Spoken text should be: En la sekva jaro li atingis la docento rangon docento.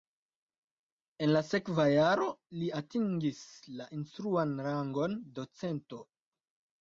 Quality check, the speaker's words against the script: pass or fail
fail